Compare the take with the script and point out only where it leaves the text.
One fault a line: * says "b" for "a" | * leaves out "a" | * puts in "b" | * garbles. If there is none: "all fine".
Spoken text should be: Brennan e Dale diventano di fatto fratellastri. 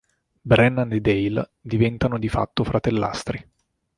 all fine